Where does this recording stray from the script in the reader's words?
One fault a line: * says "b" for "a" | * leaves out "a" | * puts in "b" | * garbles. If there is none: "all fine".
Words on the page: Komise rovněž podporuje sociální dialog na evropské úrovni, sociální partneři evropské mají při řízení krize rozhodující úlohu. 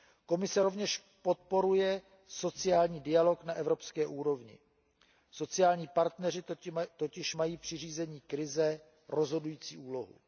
* says "totiž" for "evropské"